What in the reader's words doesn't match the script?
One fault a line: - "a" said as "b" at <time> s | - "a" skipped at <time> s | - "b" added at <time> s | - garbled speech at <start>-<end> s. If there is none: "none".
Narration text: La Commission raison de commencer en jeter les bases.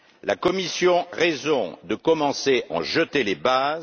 none